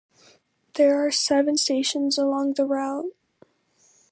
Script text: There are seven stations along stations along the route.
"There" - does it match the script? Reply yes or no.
yes